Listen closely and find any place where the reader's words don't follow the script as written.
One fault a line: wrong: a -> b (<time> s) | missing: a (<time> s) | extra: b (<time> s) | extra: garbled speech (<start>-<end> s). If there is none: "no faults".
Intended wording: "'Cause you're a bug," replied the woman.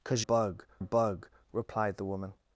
wrong: you're -> bug (0.2 s)